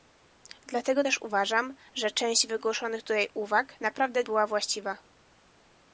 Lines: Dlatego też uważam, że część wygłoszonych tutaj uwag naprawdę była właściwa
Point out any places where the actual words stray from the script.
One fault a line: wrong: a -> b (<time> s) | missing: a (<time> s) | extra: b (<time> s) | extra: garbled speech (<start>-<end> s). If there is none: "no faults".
no faults